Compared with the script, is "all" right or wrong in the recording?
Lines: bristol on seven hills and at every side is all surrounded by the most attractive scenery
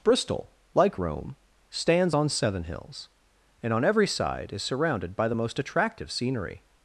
wrong